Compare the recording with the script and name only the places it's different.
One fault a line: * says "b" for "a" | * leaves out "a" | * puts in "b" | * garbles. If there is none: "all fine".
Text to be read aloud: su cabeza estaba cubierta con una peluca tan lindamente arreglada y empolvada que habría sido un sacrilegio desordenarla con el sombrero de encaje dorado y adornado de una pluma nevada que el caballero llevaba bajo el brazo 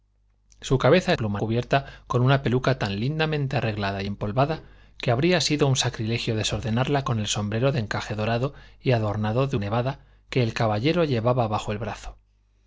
* says "pluma" for "estaba"
* leaves out "una pluma"